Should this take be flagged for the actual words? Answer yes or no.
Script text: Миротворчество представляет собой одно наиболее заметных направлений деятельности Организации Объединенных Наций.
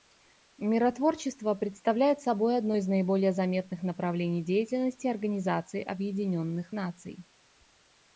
yes